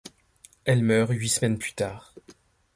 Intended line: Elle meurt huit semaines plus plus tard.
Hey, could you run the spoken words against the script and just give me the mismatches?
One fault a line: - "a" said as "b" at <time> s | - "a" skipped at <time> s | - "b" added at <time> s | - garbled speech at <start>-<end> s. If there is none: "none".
- "plus" skipped at 1.7 s